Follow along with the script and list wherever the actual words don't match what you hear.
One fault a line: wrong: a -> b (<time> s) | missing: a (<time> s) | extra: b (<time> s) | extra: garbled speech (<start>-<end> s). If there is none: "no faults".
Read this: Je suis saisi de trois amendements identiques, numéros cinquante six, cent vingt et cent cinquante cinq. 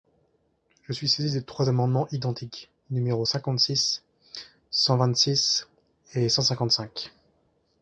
extra: six (5.1 s)